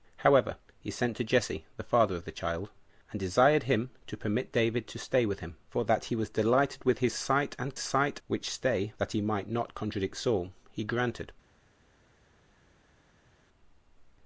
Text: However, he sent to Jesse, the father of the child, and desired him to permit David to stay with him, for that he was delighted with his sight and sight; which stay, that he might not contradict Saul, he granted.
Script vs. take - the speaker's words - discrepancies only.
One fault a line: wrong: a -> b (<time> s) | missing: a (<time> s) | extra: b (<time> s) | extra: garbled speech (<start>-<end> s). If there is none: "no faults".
no faults